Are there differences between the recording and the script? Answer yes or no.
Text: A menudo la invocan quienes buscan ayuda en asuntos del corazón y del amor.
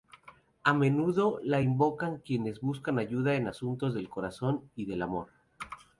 no